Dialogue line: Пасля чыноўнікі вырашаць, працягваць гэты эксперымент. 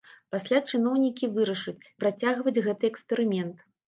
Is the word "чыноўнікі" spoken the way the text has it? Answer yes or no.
yes